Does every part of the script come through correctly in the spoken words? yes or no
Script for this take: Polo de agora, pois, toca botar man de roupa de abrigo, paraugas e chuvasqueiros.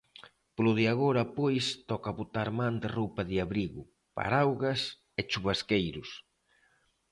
yes